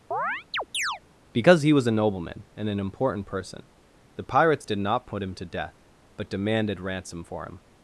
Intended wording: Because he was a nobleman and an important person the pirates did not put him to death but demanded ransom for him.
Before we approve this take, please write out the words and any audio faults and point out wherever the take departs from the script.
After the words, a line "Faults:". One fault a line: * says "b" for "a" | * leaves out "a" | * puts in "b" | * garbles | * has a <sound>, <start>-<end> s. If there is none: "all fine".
Because he was a nobleman and an important person the pirates did not put him to death but demanded ransom for him.
Faults:
* has a chirp, 0.1-1.0 s